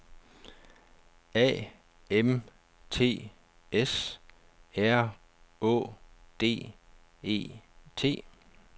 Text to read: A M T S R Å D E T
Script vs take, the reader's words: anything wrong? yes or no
no